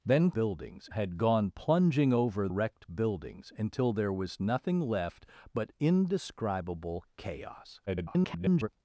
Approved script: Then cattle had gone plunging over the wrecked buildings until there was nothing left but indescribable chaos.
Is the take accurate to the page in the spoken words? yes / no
no